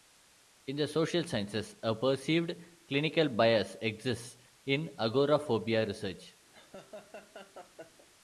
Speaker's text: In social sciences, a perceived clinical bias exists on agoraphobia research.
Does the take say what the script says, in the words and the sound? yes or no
no